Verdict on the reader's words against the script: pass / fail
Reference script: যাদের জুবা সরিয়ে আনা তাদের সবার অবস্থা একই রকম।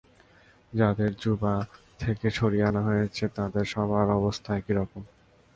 fail